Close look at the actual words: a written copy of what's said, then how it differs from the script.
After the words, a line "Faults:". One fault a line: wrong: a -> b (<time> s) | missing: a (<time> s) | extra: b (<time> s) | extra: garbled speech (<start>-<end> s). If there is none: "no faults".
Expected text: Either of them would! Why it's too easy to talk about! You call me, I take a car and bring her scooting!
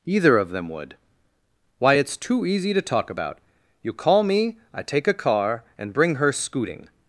Either of them would! Why it's too easy to talk about! You call me, I take a car and bring her scooting!
Faults:
no faults